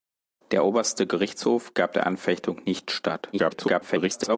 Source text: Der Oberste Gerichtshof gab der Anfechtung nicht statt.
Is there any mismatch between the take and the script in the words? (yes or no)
yes